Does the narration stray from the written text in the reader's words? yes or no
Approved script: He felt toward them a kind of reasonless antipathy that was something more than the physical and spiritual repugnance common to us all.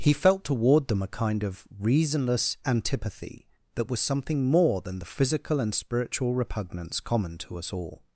no